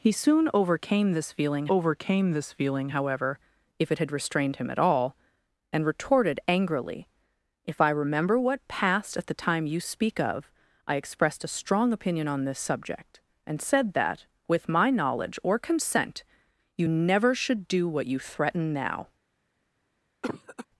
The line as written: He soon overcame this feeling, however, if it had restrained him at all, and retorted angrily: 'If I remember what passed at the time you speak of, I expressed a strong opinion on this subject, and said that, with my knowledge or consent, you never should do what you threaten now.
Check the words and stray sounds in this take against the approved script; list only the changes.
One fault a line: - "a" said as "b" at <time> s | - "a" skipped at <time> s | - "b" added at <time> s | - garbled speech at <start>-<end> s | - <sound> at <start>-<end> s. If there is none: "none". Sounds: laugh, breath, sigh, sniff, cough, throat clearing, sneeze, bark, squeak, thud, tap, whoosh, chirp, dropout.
- "overcame this feeling" added at 1.7 s
- cough at 20.2-20.7 s